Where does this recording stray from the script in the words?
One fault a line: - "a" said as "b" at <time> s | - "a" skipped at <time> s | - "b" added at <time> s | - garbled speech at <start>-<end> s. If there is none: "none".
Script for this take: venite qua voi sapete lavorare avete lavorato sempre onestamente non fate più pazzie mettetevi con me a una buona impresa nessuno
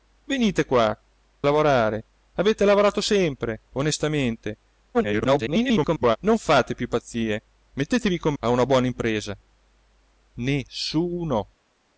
- "voi sapete" skipped at 1.0 s
- garbled speech at 4.9-6.2 s
- "me" skipped at 8.3 s